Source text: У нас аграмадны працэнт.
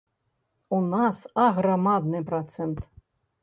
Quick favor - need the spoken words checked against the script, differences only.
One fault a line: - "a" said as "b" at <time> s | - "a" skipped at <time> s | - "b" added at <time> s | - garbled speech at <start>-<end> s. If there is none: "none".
none